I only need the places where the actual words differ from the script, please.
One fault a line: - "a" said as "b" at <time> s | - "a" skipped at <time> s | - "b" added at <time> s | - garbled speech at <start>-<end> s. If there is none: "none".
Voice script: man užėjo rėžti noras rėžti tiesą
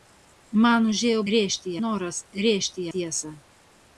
none